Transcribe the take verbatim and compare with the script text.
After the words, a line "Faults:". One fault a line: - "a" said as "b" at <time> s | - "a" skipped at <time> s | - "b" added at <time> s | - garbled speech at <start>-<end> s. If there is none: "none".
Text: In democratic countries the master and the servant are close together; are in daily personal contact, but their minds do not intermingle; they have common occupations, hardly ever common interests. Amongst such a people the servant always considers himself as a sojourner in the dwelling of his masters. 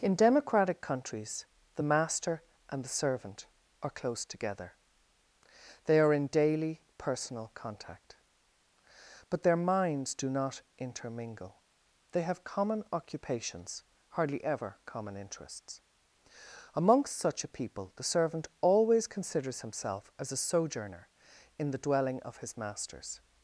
In democratic countries the master and the servant are close together; they are in daily personal contact, but their minds do not intermingle; they have common occupations, hardly ever common interests. Amongst such a people the servant always considers himself as a sojourner in the dwelling of his masters.
Faults:
- "they" added at 5.8 s